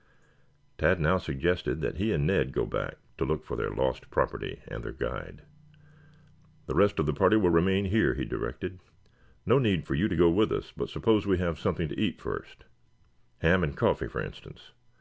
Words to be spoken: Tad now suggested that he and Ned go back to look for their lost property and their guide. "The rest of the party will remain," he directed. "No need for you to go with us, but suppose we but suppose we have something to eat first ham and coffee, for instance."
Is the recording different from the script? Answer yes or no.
yes